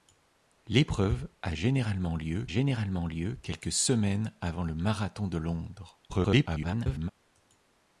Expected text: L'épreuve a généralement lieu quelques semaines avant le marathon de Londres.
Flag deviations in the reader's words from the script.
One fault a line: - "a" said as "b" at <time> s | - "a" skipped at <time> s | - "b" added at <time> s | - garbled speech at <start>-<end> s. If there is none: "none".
- "généralement lieu" added at 2.5 s
- garbled speech at 6.1-7.1 s